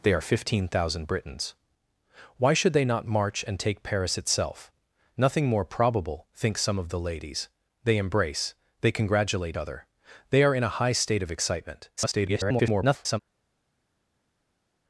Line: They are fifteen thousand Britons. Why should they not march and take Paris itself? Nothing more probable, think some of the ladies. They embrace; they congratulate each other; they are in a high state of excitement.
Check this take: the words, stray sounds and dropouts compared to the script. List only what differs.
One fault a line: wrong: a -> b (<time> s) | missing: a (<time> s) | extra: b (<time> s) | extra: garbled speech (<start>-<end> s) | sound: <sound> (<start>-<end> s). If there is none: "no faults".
missing: each (9.6 s)
extra: garbled speech (12.0-13.2 s)